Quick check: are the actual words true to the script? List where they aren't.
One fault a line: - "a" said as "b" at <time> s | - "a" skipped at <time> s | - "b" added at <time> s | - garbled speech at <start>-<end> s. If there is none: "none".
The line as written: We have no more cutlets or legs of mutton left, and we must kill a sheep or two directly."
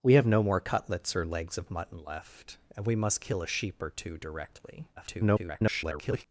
- garbled speech at 5.0-6.3 s